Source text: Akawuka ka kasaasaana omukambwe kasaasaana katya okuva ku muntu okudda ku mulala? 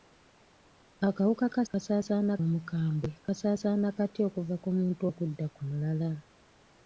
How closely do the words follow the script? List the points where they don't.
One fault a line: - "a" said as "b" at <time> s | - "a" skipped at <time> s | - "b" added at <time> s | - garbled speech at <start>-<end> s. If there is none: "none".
none